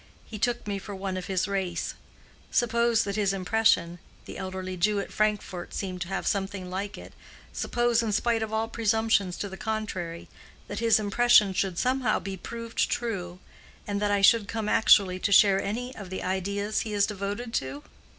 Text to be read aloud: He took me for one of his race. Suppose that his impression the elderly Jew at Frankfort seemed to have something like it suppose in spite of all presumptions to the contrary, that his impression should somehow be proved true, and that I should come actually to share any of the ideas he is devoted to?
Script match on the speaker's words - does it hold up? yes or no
yes